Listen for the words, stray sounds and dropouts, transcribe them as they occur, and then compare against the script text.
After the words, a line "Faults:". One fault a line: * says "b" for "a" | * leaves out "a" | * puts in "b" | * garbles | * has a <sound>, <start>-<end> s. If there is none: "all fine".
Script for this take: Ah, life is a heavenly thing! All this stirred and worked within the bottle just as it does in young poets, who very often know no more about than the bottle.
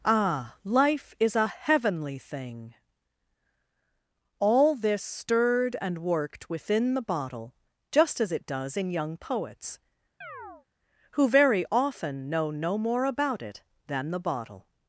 Ah, life is a heavenly thing! All this stirred and worked within the bottle just as it does in young poets, who very often know no more about it than the bottle.
Faults:
* has a chirp, 10.2-10.7 s
* puts in "it"